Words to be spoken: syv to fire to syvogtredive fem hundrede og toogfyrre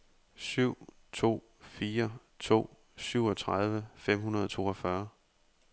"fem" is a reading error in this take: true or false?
false